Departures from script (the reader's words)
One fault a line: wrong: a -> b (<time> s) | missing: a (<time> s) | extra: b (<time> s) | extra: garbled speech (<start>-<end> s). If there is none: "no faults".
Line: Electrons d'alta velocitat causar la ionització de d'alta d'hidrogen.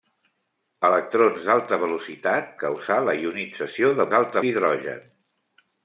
no faults